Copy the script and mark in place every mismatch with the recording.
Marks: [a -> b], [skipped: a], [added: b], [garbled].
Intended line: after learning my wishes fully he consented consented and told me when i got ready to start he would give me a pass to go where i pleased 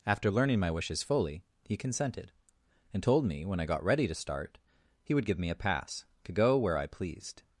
after learning my wishes fully he consented [skipped: consented] and told me when i got ready to start he would give me a pass to go where i pleased